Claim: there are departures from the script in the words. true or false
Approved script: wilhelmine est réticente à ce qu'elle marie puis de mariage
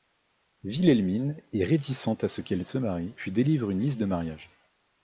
true